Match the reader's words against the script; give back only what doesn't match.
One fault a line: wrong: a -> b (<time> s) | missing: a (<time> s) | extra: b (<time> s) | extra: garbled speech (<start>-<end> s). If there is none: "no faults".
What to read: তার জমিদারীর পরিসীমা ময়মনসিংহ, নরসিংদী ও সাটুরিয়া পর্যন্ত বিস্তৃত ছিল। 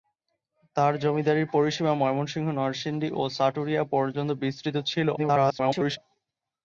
extra: garbled speech (5.2-6.0 s)